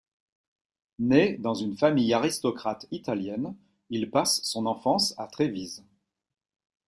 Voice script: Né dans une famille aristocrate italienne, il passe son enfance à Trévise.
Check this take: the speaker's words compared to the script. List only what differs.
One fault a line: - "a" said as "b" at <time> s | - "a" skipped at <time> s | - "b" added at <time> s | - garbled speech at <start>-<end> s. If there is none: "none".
none